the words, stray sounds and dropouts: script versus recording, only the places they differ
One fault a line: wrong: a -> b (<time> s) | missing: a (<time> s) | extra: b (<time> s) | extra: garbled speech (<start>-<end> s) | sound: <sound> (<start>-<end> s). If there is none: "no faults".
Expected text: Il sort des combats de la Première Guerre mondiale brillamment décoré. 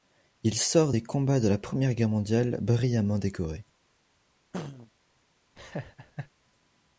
sound: throat clearing (4.5-4.9 s)
sound: laugh (5.6-6.3 s)